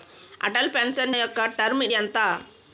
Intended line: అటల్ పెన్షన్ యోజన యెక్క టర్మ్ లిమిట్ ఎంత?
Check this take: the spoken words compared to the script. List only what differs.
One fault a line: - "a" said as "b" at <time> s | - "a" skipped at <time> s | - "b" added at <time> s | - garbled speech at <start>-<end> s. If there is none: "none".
- "యోజన" skipped at 1.1 s
- "లిమిట్" skipped at 1.8 s